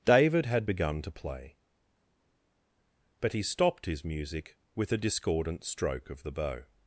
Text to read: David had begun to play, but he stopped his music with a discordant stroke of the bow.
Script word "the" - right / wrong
right